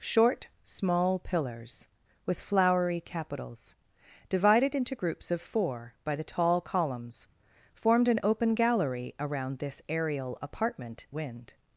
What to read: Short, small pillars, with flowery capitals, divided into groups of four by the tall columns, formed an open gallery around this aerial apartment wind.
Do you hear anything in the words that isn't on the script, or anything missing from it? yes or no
no